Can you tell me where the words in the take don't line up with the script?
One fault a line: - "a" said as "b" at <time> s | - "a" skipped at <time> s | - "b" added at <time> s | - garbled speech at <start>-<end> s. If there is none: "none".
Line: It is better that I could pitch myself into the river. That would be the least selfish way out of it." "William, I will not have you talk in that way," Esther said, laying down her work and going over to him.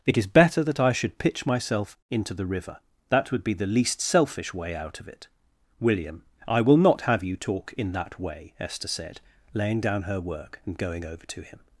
- "could" said as "should" at 0.9 s